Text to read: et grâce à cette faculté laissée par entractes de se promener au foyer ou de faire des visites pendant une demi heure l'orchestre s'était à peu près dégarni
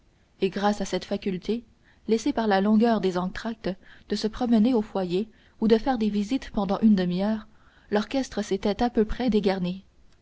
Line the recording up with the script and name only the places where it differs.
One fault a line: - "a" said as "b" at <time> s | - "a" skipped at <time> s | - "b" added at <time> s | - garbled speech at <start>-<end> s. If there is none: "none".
- "la longueur des" added at 2.5 s